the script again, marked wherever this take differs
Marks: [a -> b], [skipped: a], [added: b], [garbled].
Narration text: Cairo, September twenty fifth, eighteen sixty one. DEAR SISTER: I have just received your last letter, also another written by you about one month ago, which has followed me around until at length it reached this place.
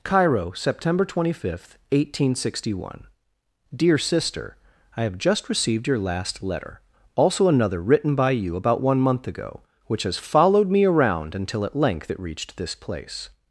Cairo, September twenty fifth, eighteen sixty one. DEAR SISTER: I have just received your last letter, also another written by you about one month ago, which has followed me around until at length it reached this place.